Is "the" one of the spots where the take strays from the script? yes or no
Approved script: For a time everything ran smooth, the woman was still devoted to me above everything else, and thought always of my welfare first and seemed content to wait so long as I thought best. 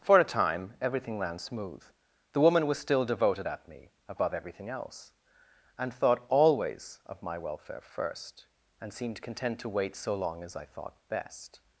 no